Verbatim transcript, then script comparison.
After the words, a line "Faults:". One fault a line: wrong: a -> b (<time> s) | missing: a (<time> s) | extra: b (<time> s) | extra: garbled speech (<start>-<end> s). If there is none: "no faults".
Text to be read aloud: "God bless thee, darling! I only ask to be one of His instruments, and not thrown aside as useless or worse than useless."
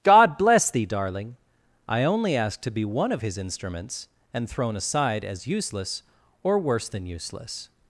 "God bless thee, darling! I only ask to be one of His instruments, and thrown aside as useless or worse than useless."
Faults:
missing: not (4.5 s)